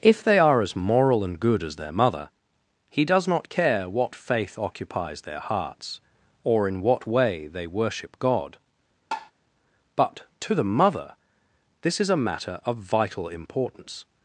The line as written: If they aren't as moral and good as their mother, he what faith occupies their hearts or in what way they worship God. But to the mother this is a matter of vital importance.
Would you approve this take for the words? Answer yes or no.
no